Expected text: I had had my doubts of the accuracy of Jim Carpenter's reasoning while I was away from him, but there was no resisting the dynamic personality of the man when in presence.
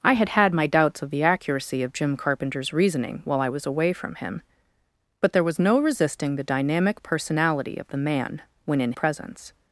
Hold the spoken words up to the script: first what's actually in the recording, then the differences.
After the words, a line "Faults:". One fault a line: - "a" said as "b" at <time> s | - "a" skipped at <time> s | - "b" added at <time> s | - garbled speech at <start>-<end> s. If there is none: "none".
I had had my doubts of the accuracy of Jim Carpenter's reasoning while I was away from him, but there was no resisting the dynamic personality of the man when in presence.
Faults:
none